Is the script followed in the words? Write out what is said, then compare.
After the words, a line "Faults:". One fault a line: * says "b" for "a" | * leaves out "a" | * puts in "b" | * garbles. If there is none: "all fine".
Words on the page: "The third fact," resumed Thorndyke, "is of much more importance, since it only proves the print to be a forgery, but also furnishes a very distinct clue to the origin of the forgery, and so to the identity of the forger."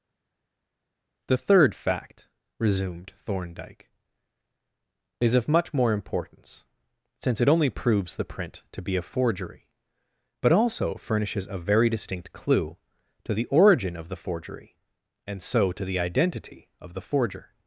"The third fact," resumed Thorndyke, "is of much more importance, since it only proves the print to be a forgery, but also furnishes a very distinct clue to the origin of the forgery, and so to the identity of the forger."
Faults:
all fine